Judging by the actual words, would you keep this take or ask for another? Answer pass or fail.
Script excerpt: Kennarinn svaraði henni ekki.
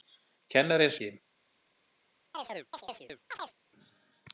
fail